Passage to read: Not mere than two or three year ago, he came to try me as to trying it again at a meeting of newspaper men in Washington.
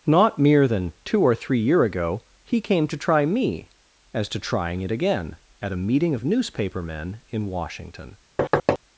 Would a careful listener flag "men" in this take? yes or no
no